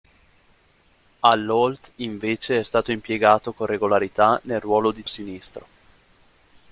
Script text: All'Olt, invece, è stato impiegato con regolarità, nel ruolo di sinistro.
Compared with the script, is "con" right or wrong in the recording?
right